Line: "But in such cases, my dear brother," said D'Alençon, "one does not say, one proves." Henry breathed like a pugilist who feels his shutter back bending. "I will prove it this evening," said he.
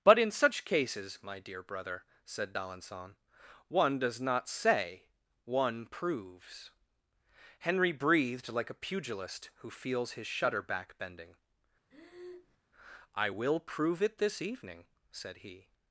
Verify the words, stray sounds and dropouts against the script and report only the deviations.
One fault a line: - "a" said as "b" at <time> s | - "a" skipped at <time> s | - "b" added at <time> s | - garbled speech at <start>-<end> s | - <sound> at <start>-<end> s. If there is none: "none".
- breath at 11.9-12.6 s